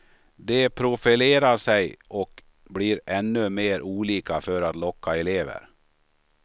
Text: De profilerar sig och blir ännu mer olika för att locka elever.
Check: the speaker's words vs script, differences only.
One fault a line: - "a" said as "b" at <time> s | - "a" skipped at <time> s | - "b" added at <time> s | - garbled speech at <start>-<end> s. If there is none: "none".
none